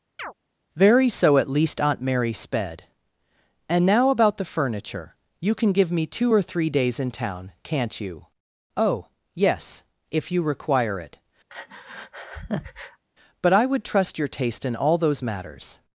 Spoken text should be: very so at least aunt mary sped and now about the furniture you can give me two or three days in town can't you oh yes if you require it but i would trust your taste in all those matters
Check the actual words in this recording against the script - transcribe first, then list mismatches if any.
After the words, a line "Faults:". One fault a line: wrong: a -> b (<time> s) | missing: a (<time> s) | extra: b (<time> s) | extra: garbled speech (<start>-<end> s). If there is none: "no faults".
very so at least aunt mary sped and now about the furniture you can give me two or three days in town can't you oh yes if you require it but i would trust your taste in all those matters
Faults:
no faults